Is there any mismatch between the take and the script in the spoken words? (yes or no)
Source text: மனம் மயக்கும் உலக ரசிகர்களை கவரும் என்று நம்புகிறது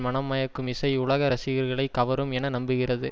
yes